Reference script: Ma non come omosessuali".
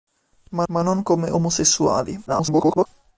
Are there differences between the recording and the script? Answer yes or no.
yes